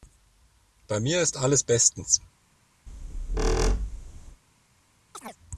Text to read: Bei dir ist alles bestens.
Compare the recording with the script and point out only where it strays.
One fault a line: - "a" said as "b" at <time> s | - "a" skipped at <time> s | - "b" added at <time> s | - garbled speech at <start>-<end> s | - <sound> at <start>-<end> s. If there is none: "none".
- "dir" said as "mir" at 1.0 s
- squeak at 2.9-4.4 s
- chirp at 5.1-5.4 s